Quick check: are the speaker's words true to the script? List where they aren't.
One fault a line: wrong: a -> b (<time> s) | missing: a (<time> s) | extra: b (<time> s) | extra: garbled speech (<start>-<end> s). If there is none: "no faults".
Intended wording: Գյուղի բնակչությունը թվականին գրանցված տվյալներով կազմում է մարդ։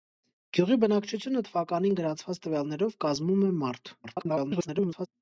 extra: garbled speech (4.0-5.1 s)